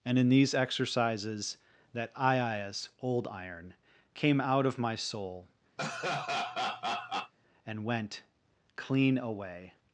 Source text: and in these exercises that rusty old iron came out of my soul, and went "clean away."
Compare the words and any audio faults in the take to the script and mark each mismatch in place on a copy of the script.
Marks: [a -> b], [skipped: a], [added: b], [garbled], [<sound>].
and in these exercises that [rusty -> iias] old iron came out of my soul, [laugh] and went "clean away."